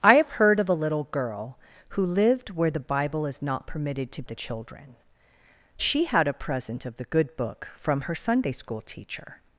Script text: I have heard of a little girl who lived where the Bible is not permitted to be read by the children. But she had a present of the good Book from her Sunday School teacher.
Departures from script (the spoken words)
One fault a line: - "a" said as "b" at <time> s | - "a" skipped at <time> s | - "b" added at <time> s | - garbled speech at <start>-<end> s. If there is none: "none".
- "be read by" skipped at 4.2 s
- "But" skipped at 5.0 s